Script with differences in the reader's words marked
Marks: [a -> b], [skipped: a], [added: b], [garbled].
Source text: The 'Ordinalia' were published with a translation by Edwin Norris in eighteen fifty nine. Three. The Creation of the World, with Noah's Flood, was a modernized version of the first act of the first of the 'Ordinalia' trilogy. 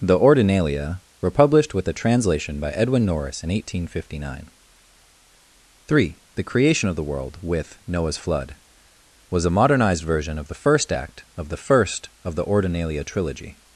The 'Ordinalia' were published with a translation by Edwin Norris in eighteen fifty nine. Three. The Creation of the World, with Noah's Flood, was a modernized version of the first act of the first of the 'Ordinalia' trilogy.